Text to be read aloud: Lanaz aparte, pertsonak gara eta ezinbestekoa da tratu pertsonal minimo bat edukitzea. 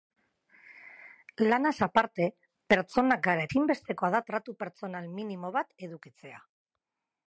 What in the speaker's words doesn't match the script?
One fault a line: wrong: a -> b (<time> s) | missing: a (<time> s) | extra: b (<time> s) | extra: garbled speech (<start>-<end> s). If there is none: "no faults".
missing: eta (3.5 s)